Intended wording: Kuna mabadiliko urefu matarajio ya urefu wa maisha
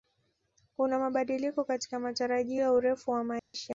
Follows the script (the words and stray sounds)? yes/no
no